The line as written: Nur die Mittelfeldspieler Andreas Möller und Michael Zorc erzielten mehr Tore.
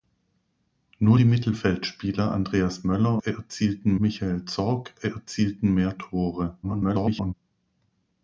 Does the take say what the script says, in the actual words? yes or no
no